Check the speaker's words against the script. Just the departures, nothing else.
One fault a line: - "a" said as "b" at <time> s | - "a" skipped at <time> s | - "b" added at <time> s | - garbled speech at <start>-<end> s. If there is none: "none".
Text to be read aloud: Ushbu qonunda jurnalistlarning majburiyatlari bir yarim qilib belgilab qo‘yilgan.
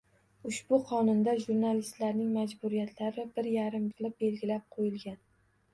none